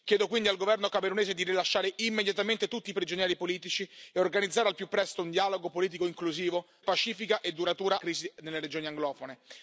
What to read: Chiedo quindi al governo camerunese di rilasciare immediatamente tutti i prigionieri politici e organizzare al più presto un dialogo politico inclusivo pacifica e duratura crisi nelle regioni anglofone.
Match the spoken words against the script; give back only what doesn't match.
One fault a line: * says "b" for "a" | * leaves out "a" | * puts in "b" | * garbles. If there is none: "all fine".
all fine